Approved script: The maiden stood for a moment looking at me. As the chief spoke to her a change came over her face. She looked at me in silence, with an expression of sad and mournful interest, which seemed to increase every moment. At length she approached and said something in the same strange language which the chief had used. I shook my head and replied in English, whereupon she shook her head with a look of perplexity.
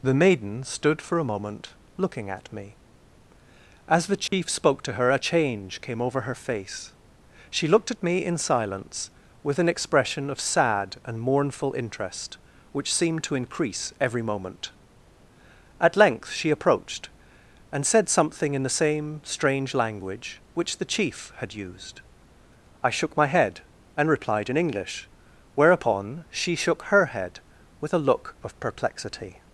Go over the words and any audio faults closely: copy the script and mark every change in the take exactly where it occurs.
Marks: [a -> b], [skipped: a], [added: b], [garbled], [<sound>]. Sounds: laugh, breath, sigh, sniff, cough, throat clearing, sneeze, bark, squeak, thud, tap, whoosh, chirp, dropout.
The maiden stood for a moment looking at me. As the chief [dropout] spoke to her a change came over her face. She looked at me in silence, with an expression of sad and mournful interest, which seemed to increase every moment. At length she approached and said something in the same strange language which the chief had used. I shook my head and replied in English, whereupon she shook her head with a look of perplexity.